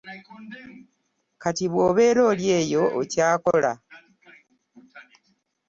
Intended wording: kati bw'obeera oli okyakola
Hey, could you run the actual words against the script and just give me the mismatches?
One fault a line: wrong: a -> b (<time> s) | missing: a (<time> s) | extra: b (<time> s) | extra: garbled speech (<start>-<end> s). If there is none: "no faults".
extra: eyo (2.6 s)